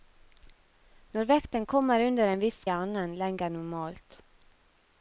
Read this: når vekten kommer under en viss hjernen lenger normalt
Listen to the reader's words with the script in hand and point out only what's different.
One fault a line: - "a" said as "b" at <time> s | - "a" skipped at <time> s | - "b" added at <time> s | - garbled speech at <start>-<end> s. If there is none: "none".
none